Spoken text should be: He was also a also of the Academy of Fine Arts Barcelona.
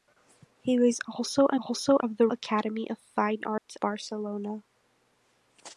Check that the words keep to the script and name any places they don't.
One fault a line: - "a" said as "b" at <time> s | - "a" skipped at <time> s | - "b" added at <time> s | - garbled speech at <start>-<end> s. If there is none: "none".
none